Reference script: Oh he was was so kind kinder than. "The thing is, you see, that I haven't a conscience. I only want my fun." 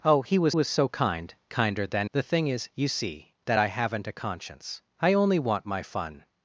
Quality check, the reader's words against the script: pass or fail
pass